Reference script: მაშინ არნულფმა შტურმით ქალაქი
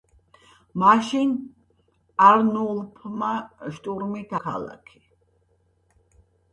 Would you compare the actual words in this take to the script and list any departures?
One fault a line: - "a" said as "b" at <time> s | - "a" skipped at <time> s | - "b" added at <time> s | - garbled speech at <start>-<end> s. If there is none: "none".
none